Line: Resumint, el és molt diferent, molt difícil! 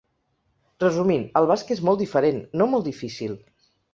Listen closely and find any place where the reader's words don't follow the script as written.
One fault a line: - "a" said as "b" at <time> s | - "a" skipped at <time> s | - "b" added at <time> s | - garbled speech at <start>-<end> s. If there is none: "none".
- "basc" added at 1.5 s
- "no" added at 2.6 s